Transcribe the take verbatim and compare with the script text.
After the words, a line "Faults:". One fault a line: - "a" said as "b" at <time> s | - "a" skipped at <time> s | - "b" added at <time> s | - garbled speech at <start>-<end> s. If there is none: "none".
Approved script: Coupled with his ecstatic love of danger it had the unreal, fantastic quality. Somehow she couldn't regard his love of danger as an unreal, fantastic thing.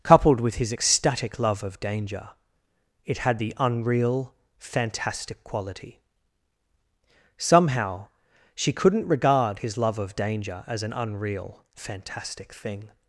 Coupled with his ecstatic love of danger it had the unreal, fantastic quality. Somehow she couldn't regard his love of danger as an unreal, fantastic thing.
Faults:
none